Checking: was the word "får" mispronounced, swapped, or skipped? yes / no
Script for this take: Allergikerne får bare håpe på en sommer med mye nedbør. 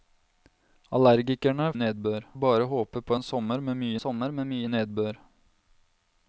yes